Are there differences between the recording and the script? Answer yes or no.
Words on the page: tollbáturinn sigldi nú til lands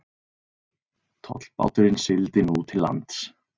no